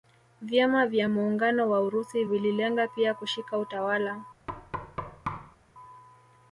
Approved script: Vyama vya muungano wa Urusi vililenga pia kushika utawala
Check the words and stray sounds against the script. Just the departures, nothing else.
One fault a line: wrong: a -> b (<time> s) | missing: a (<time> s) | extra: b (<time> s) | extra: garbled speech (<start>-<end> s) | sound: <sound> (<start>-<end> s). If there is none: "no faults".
sound: thud (4.5-5.6 s)